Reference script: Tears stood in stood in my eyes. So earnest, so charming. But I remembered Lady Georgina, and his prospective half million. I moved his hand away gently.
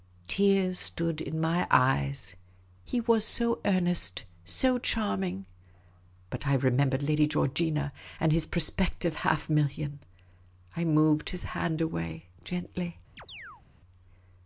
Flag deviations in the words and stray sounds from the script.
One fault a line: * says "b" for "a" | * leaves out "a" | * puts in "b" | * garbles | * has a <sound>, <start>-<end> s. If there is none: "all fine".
* says "my eyes He was" for "stood in my eyes"
* has a chirp, 13.2-13.6 s